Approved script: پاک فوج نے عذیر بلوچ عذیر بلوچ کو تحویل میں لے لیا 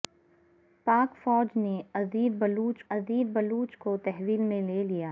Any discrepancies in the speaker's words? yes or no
no